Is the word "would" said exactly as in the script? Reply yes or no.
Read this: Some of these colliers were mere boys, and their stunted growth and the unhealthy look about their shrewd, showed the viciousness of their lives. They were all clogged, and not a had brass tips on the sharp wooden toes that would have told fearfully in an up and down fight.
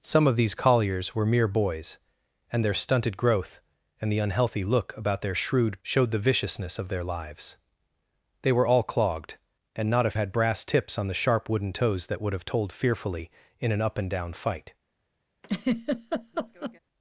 yes